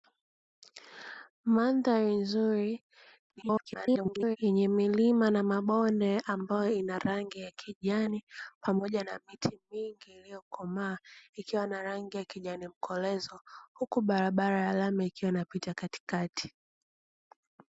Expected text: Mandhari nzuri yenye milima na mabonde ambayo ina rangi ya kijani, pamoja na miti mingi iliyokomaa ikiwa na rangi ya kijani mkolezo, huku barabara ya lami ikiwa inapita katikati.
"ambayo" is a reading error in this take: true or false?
false